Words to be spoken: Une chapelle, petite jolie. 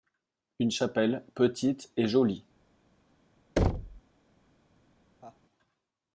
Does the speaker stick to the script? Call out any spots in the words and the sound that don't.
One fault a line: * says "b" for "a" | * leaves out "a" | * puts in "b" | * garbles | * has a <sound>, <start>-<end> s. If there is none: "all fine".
* puts in "et"
* has a thud, 3.6-4.0 s
* has a laugh, 5.2-5.4 s